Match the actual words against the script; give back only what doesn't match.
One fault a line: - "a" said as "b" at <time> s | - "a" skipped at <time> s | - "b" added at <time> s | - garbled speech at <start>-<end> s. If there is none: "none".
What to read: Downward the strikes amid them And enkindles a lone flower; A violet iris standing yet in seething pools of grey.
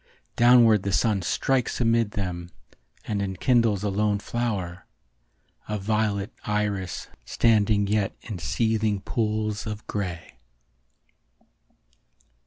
- "sun" added at 0.9 s